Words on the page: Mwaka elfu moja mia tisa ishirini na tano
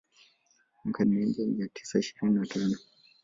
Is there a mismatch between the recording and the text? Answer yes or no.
yes